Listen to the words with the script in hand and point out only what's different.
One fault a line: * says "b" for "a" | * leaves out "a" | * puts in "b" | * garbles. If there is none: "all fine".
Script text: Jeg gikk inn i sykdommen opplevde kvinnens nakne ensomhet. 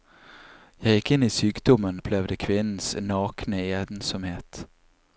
all fine